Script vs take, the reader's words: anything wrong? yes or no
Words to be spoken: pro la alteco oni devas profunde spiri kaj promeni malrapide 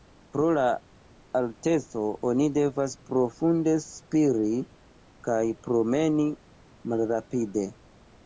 no